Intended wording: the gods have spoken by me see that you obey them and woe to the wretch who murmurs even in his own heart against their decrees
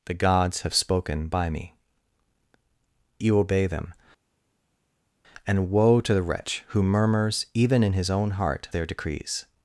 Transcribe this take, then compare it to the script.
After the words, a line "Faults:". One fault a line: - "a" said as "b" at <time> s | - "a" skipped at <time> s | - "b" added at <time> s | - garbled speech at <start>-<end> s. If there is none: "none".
the gods have spoken by me you obey them and woe to the wretch who murmurs even in his own heart their decrees
Faults:
- "see that" skipped at 1.8 s
- "against" skipped at 8.7 s